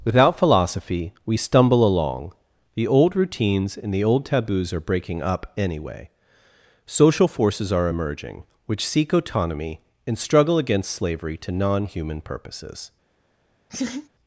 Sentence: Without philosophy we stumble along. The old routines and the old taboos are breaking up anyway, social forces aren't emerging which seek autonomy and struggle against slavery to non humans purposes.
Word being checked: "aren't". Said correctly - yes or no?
no